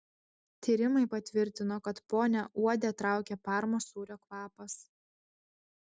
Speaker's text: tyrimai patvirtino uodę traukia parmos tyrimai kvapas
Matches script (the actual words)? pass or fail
fail